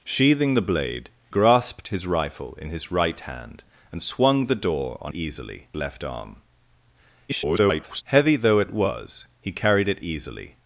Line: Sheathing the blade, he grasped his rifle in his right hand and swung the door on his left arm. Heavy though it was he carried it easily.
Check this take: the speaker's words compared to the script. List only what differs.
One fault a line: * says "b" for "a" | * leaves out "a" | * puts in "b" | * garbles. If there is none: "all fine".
* leaves out "he"
* says "easily" for "his"
* garbles